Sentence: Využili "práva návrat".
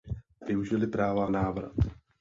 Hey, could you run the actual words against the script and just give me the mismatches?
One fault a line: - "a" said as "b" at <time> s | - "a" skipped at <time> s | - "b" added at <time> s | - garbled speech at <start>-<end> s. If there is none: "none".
none